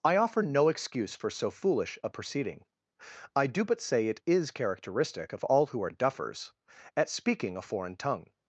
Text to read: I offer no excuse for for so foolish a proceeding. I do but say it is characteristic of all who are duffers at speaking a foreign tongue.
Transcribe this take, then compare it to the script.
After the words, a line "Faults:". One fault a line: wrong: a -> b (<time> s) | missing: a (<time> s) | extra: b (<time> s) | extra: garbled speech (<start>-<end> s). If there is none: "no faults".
I offer no excuse for so foolish a proceeding. I do but say it is characteristic of all who are duffers at speaking a foreign tongue.
Faults:
missing: for (1.3 s)